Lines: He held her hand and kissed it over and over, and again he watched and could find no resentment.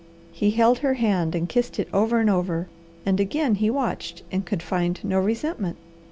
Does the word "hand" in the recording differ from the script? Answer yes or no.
no